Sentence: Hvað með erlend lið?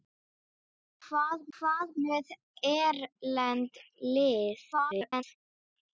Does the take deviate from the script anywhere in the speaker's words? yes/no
yes